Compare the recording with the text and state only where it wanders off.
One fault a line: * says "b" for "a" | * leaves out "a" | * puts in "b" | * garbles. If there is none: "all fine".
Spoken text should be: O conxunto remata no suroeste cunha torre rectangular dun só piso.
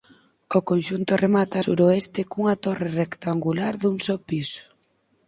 * leaves out "no"